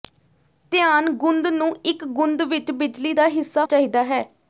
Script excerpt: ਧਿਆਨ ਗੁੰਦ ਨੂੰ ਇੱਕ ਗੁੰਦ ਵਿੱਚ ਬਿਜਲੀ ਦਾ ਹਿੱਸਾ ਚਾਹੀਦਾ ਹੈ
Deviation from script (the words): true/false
false